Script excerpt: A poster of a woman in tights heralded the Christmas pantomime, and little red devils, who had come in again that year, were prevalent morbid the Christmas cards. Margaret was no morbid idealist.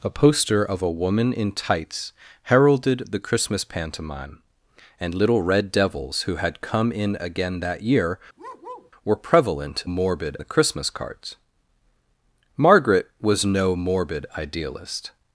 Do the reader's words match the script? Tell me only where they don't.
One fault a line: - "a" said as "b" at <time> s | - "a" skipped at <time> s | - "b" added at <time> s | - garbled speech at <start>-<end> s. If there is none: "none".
none